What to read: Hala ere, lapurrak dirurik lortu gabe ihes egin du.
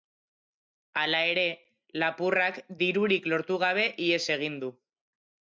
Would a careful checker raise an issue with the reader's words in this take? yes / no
no